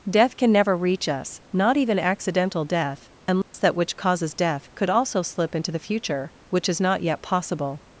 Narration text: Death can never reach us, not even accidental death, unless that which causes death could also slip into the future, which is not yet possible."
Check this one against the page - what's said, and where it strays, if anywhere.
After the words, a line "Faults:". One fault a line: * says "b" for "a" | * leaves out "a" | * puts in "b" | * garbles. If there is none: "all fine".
Death can never reach us, not even accidental death, unless that which causes death could also slip into the future, which is not yet possible."
Faults:
all fine